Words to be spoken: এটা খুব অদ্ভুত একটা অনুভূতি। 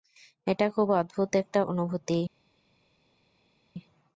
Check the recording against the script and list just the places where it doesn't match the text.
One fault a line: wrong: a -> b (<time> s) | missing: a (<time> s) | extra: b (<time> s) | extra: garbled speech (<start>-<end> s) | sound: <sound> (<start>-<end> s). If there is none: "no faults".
no faults